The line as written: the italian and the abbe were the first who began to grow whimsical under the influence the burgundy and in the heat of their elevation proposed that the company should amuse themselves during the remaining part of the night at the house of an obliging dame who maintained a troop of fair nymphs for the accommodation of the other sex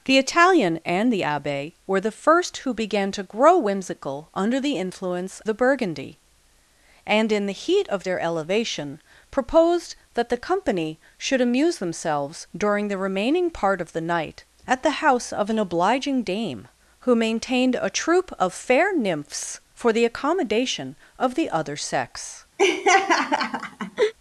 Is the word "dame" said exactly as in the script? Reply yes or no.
yes